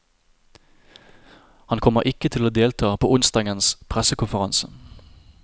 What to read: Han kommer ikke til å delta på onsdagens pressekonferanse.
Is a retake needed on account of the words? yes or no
no